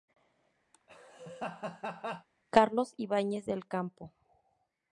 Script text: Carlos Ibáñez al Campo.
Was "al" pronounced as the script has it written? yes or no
no